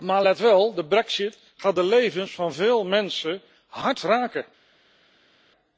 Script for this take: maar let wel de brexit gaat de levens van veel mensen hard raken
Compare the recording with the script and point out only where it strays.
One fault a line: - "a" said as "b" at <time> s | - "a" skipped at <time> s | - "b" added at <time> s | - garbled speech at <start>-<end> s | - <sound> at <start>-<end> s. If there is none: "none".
none